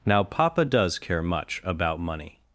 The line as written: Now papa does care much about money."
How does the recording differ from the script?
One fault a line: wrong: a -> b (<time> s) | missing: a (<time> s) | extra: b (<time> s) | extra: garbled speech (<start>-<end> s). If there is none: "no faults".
no faults